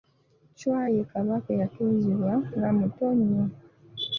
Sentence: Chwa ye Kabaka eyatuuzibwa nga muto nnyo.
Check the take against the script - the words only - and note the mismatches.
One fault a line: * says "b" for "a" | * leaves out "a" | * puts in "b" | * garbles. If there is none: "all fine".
all fine